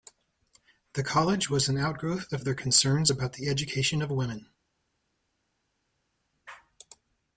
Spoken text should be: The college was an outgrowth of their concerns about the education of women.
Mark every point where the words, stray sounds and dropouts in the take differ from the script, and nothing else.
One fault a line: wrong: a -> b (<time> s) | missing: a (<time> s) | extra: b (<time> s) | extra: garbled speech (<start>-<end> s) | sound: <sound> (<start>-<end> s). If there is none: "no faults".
no faults